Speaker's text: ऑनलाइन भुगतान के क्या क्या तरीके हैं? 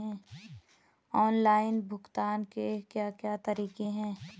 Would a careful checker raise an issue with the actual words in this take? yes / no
no